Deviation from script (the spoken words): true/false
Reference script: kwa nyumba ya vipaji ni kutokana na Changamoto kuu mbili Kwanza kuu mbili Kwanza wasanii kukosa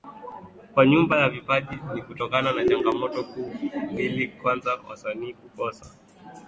true